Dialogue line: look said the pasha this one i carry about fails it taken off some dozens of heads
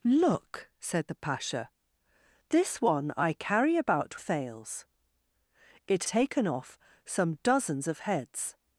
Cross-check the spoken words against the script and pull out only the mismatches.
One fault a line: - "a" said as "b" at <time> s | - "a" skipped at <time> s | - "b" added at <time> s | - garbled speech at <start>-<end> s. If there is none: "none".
none